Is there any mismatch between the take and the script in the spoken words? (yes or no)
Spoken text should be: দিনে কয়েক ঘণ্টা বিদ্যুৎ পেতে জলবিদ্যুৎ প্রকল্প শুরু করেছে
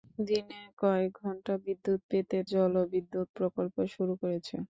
no